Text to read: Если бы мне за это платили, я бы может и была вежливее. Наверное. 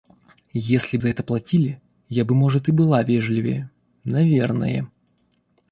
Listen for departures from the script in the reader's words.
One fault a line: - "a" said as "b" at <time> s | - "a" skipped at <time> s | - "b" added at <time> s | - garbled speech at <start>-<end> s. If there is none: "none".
- "бы мне" skipped at 1.0 s